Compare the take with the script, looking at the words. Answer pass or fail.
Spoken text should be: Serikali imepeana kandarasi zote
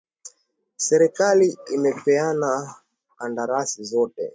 pass